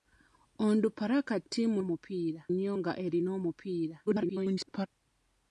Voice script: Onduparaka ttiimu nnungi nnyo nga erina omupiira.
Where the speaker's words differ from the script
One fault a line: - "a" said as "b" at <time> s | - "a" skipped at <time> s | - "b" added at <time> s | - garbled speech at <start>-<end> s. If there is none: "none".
- "nnungi" said as "omupiira" at 1.8 s
- garbled speech at 4.1-4.9 s